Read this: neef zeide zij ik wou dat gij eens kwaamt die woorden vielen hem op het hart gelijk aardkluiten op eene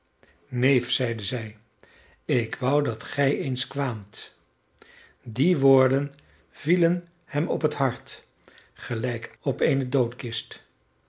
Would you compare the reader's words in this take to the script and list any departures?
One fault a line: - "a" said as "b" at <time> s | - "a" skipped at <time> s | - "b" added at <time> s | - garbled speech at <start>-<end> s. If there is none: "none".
- "aardkluiten" skipped at 9.3 s